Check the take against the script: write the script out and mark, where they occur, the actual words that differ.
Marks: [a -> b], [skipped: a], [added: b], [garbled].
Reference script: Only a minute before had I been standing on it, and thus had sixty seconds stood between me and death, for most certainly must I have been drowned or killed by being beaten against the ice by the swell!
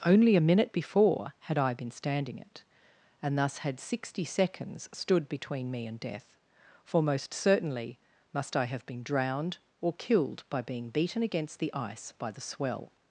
Only a minute before had I been standing [skipped: on] it, and thus had sixty seconds stood between me and death, for most certainly must I have been drowned or killed by being beaten against the ice by the swell!